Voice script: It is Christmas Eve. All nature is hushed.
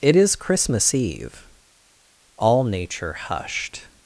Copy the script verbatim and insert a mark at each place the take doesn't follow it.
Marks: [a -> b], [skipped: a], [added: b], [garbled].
It is Christmas Eve. All nature [skipped: is] hushed.